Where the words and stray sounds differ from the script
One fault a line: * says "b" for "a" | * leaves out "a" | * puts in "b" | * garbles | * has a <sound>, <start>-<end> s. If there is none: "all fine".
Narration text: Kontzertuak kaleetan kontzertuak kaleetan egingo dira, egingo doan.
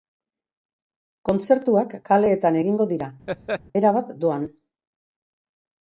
* leaves out "kontzertuak kaleetan"
* has a laugh, 3.3-3.6 s
* says "erabat" for "egingo"